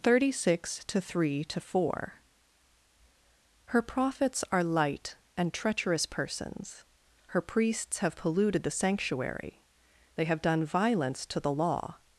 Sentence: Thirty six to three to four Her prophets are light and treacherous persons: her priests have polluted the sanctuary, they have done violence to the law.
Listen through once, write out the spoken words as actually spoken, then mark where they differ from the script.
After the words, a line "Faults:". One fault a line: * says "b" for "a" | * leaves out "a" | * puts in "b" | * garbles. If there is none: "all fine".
Thirty six to three to four Her prophets are light and treacherous persons: her priests have polluted the sanctuary, they have done violence to the law.
Faults:
all fine